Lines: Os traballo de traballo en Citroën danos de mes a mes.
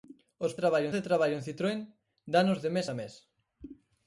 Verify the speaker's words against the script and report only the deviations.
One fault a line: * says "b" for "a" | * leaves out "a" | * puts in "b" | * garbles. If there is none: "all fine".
all fine